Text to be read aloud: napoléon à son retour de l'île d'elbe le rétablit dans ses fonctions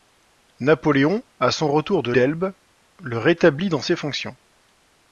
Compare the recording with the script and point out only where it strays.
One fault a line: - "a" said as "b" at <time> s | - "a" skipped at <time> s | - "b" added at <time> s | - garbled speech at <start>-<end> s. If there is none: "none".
- "l'île" skipped at 2.1 s